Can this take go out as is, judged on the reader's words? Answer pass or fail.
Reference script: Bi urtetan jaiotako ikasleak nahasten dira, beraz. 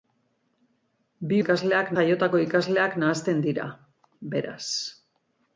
fail